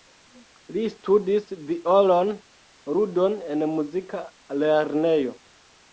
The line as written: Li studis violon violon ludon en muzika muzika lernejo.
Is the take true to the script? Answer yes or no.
no